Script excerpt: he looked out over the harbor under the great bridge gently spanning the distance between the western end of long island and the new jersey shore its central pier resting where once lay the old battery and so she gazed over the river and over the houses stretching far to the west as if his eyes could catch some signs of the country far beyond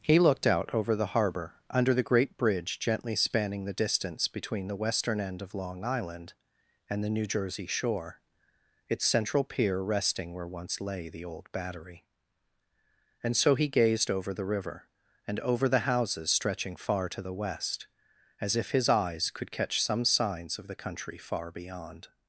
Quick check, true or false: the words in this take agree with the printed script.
false